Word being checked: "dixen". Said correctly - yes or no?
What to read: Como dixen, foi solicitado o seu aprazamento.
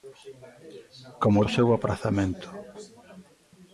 no